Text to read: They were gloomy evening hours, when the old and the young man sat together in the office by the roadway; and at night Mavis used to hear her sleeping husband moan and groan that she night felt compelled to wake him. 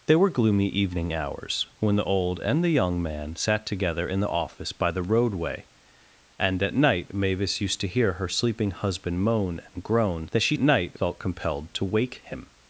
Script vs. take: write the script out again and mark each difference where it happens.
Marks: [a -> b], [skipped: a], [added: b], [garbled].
They were gloomy evening hours, when the old and the young man sat together in the office by the roadway; and at night Mavis used to hear her sleeping husband moan and groan that she night felt compelled to wake him.